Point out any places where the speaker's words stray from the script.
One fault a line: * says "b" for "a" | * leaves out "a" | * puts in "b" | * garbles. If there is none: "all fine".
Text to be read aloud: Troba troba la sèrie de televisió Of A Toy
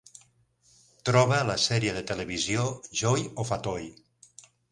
* leaves out "troba"
* puts in "Joy"